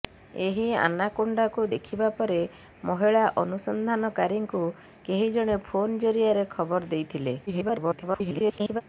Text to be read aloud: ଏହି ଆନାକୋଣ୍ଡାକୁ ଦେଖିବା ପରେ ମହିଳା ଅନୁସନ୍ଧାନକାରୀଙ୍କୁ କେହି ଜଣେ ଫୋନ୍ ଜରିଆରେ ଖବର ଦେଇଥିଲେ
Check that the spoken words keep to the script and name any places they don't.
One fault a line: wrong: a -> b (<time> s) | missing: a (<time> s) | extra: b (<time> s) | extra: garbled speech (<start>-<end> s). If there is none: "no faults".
extra: garbled speech (7.5-8.8 s)